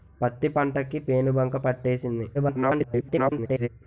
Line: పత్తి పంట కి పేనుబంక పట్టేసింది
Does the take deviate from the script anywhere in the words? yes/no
yes